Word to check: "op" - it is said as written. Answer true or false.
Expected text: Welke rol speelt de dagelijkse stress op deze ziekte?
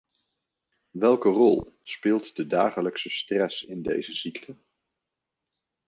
false